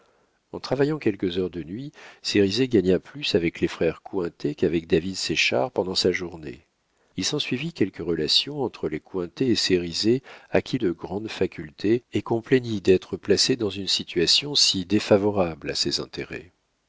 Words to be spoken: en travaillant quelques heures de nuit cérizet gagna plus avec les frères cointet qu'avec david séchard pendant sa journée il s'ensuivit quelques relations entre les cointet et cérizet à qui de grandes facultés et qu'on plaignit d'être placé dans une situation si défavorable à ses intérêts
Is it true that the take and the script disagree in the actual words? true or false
false